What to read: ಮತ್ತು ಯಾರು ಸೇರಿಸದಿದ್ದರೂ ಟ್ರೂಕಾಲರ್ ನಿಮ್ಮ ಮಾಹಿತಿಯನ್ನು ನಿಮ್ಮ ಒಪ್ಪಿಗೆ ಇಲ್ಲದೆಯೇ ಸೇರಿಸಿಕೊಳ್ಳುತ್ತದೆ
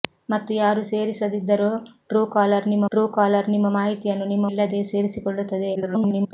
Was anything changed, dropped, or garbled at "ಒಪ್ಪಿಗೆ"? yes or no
yes